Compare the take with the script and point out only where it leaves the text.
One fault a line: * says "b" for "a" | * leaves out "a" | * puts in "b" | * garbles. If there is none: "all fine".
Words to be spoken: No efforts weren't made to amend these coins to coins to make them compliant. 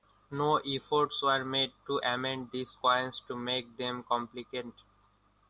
* says "were" for "weren't"
* leaves out "coins to"